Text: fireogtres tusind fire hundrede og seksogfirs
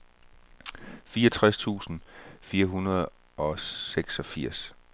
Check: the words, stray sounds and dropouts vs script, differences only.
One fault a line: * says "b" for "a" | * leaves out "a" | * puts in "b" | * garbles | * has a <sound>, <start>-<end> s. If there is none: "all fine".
all fine